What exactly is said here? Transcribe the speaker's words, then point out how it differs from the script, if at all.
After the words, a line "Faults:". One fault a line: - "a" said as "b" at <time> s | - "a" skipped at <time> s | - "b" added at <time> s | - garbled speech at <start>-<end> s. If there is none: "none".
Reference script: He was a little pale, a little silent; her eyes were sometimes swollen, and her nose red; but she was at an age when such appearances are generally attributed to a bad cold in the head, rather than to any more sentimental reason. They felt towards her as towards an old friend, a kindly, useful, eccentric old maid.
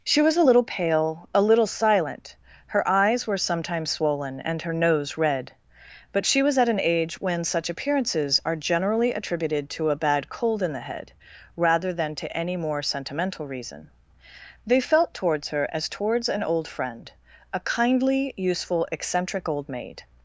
She was a little pale, a little silent; her eyes were sometimes swollen, and her nose red; but she was at an age when such appearances are generally attributed to a bad cold in the head, rather than to any more sentimental reason. They felt towards her as towards an old friend, a kindly, useful, eccentric old maid.
Faults:
- "He" said as "She" at 0.0 s